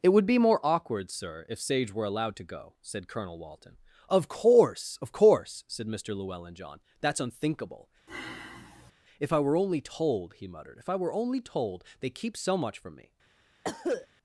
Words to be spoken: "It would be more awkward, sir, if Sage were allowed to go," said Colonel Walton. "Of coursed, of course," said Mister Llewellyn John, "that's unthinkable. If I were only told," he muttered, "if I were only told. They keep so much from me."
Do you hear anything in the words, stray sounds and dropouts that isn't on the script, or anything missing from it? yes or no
yes